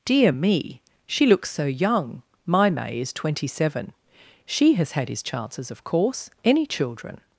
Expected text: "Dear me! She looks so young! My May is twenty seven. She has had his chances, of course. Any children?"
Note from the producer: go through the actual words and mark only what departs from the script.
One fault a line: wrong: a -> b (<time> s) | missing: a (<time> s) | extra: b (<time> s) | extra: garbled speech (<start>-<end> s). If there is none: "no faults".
no faults